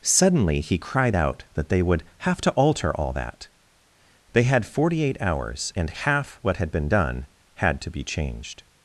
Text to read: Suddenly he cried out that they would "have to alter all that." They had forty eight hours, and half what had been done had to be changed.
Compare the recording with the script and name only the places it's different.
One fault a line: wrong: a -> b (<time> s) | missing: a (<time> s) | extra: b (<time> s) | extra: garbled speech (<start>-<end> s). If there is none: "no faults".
no faults